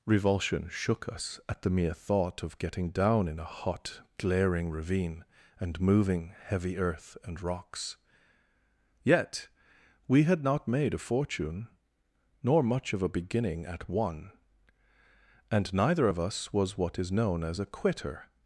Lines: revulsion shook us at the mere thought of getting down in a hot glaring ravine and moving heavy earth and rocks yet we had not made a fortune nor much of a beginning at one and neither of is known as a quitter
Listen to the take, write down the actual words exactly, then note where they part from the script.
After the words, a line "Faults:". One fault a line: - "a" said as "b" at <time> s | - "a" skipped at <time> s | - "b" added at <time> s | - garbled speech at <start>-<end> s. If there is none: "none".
revulsion shook us at the mere thought of getting down in a hot glaring ravine and moving heavy earth and rocks yet we had not made a fortune nor much of a beginning at one and neither of us was what is known as a quitter
Faults:
- "us was what" added at 16.2 s